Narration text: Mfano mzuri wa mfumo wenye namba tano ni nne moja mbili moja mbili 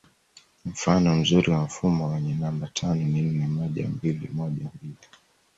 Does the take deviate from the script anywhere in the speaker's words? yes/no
no